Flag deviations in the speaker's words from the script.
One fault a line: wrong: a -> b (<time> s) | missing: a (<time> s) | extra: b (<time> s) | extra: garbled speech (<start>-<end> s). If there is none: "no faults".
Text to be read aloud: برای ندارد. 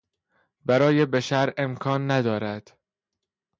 extra: بشر امکان (1.1 s)